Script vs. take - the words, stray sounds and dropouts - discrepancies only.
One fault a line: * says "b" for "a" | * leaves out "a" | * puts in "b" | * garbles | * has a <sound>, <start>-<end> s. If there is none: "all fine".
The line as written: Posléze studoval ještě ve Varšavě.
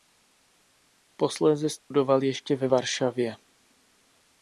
* has a dropout, 1.8-1.9 s